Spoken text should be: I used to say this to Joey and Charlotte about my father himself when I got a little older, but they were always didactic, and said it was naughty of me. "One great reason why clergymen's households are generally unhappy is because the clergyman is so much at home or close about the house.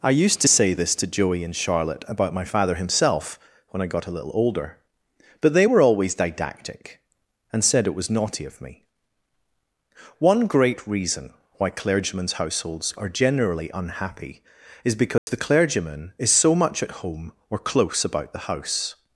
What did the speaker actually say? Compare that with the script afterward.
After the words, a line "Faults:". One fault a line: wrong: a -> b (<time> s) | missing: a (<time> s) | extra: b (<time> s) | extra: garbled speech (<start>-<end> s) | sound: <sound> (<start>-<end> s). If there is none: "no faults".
I used to say this to Joey and Charlotte about my father himself when I got a little older, but they were always didactic, and said it was naughty of me. "One great reason why clergymen's households are generally unhappy is because the clergyman is so much at home or close about the house.
Faults:
sound: dropout (15.2-15.3 s)